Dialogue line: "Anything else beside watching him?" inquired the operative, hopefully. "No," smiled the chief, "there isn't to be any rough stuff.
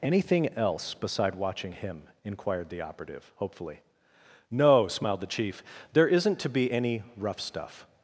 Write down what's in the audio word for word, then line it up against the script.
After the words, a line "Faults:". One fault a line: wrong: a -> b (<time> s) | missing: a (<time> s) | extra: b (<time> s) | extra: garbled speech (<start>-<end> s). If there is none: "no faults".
"Anything else beside watching him?" inquired the operative, hopefully. "No," smiled the chief, "there isn't to be any rough stuff.
Faults:
no faults